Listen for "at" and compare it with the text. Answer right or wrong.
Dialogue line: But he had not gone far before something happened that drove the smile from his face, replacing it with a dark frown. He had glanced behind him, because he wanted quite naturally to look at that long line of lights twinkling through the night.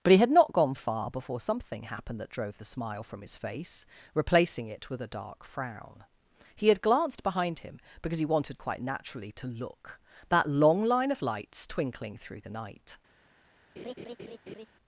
wrong